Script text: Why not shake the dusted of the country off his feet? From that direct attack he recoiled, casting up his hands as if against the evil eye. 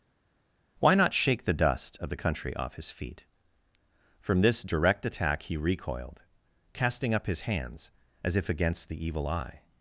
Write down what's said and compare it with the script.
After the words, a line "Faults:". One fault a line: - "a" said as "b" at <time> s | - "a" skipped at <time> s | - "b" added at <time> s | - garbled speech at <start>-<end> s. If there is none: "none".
Why not shake the dust of the country off his feet? From this direct attack he recoiled, casting up his hands as if against the evil eye.
Faults:
- "dusted" said as "dust" at 1.5 s
- "that" said as "this" at 4.4 s